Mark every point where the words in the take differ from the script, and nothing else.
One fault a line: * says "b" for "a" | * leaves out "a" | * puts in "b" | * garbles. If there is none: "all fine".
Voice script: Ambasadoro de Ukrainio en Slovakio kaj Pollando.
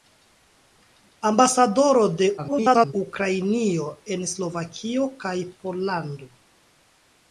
* garbles